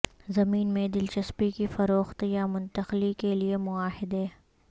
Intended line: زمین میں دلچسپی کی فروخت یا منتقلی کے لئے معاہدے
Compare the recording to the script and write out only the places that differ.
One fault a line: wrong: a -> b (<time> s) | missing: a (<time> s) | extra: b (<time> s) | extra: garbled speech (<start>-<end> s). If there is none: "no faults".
no faults